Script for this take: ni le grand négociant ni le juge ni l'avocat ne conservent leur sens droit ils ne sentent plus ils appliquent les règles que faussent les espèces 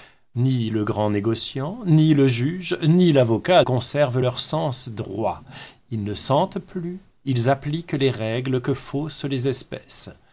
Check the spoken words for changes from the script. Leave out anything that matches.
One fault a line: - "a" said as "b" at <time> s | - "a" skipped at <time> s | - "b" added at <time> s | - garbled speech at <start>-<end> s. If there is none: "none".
- "ne" skipped at 3.6 s